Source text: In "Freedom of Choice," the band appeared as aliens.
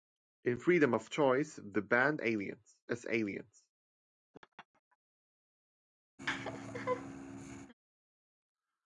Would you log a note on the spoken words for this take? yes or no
yes